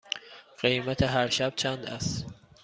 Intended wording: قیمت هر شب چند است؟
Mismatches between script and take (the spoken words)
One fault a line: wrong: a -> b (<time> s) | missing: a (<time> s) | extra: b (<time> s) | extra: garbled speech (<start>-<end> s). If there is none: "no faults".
no faults